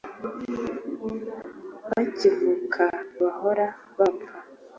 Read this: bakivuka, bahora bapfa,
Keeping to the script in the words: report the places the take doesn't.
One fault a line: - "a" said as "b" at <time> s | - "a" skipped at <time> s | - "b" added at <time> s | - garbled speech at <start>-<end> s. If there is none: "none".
none